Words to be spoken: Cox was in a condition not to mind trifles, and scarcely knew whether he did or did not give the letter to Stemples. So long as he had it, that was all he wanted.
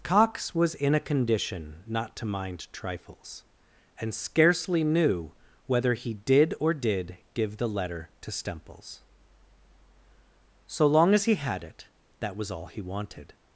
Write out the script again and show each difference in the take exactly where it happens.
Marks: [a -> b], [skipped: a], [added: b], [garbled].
Cox was in a condition not to mind trifles, and scarcely knew whether he did or did [skipped: not] give the letter to Stemples. So long as he had it, that was all he wanted.